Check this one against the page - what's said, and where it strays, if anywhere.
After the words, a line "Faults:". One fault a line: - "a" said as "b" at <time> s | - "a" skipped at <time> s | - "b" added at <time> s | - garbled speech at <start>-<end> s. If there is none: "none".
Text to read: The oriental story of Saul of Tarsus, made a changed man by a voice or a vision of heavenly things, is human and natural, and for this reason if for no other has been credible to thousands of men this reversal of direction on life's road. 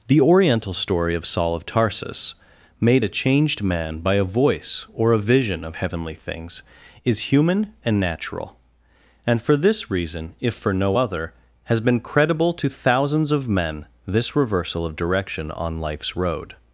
The oriental story of Saul of Tarsus, made a changed man by a voice or a vision of heavenly things, is human and natural, and for this reason if for no other has been credible to thousands of men this reversal of direction on life's road.
Faults:
none